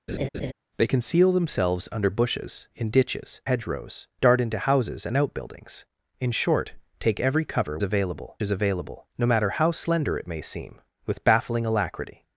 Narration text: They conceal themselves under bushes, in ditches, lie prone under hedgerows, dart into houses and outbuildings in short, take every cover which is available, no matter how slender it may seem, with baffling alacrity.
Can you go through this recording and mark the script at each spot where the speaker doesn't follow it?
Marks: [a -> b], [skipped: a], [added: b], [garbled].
They conceal themselves under bushes, in ditches, [skipped: lie prone under] hedgerows, dart into houses and outbuildings in short, take every cover [which -> available] is available, no matter how slender it may seem, with baffling alacrity.